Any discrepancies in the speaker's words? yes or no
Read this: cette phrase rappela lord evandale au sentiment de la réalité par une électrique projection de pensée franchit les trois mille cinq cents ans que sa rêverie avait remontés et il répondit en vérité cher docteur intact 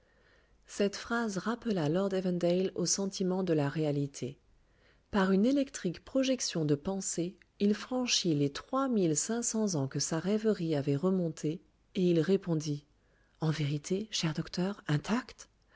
yes